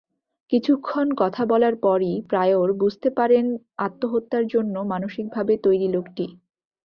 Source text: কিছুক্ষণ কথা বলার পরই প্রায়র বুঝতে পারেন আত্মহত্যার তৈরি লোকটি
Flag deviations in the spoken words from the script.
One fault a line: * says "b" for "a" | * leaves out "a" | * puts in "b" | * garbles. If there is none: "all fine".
* puts in "জন্য মানসিকভাবে"